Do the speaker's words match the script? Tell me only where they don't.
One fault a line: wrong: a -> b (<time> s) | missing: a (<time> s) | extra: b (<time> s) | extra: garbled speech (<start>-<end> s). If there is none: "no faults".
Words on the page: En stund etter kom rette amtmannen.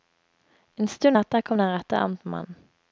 extra: den (1.6 s)